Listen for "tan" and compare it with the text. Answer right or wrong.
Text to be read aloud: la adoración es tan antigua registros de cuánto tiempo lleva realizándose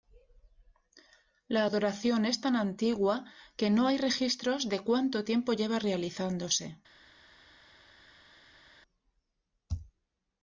right